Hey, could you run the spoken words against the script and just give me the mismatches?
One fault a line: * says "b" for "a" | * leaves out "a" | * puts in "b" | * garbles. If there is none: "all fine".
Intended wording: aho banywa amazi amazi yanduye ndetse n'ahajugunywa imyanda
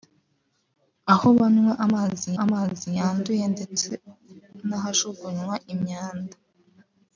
all fine